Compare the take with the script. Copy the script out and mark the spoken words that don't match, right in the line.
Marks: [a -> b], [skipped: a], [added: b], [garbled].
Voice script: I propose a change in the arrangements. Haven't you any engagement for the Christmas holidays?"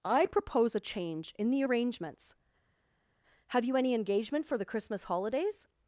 I propose a change in the arrangements. [Haven't -> Have] you any engagement for the Christmas holidays?"